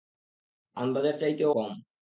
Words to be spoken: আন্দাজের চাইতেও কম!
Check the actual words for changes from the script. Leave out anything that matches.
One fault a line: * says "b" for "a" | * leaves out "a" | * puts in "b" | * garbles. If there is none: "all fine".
all fine